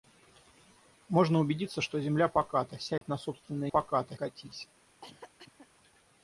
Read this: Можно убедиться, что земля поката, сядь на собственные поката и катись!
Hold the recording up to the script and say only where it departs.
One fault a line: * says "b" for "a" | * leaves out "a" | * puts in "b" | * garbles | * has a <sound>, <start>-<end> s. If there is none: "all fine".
* has a dropout, 3.0-3.0 s
* has a cough, 5.0-5.7 s